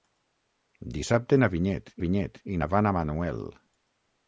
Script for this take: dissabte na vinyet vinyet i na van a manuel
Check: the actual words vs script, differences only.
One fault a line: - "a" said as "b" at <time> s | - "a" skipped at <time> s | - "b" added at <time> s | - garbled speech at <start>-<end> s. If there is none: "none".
none